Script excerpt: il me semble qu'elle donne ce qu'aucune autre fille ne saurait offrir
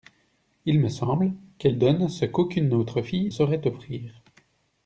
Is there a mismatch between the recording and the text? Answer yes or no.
yes